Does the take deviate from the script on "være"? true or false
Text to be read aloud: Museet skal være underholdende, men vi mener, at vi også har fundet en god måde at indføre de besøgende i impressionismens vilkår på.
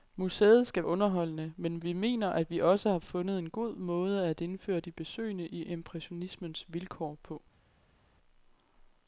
true